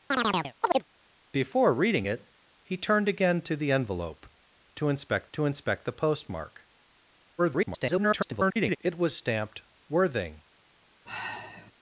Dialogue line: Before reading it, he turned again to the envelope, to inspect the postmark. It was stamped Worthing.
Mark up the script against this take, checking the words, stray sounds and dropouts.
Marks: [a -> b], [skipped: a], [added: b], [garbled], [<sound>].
[chirp] Before reading it, he turned again to the envelope, to inspect [added: to inspect] the postmark. [garbled] It was stamped Worthing. [sigh]